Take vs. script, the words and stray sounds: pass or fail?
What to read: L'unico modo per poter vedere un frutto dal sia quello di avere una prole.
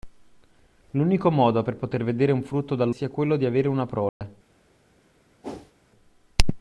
fail